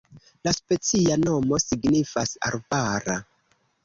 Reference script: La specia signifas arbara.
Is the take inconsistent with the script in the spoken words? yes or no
yes